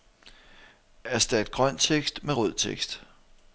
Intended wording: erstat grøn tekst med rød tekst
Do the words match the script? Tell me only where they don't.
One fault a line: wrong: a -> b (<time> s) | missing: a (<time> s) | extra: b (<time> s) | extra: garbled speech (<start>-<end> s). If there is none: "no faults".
no faults